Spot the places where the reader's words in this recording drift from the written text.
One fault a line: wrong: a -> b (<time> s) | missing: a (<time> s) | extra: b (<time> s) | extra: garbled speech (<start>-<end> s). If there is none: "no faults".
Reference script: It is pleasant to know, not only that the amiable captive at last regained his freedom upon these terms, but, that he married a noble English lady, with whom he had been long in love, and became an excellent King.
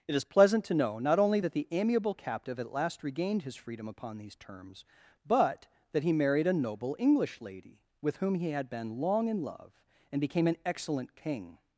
no faults